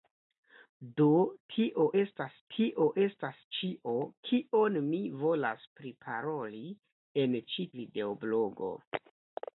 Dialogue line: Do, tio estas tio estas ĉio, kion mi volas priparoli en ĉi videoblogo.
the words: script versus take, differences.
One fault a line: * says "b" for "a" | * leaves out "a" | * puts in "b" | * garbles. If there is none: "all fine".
all fine